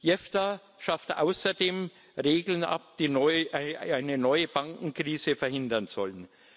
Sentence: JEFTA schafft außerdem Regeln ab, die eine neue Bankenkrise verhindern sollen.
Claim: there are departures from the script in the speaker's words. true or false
false